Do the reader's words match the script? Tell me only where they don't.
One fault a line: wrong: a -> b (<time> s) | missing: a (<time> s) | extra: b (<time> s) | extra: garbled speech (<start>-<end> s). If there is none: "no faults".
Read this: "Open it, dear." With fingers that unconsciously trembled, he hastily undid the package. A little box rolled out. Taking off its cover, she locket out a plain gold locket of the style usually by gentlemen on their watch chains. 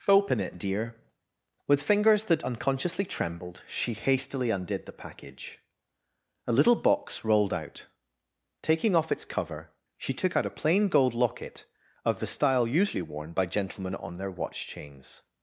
wrong: he -> she (3.7 s)
wrong: locket -> took (10.1 s)
extra: worn (13.0 s)